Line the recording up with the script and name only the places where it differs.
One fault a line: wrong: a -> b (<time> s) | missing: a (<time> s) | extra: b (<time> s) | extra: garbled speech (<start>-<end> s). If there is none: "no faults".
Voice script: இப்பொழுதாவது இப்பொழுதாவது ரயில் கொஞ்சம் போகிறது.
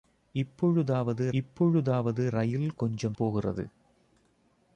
no faults